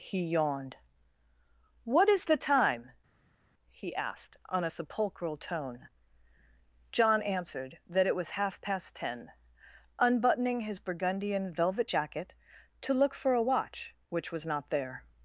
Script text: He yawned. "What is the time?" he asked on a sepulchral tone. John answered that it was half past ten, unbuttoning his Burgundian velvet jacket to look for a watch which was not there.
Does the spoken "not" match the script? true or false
true